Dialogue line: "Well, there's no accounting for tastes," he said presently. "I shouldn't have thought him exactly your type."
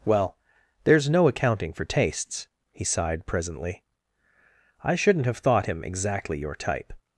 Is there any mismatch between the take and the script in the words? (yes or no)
yes